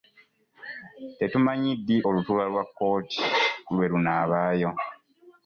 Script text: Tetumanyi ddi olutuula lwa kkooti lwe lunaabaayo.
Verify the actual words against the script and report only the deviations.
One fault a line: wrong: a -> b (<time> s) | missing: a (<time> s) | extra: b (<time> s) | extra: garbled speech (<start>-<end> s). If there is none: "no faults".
no faults